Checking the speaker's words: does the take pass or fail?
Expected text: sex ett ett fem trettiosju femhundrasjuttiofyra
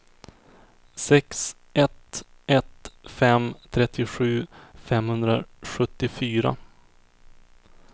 pass